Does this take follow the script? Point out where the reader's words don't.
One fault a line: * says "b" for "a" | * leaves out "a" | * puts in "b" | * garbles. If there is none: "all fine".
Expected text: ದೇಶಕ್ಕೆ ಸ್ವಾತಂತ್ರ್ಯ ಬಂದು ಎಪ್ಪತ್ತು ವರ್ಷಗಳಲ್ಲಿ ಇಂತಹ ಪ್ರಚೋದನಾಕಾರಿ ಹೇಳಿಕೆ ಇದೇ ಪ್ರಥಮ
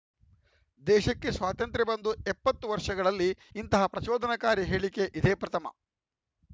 all fine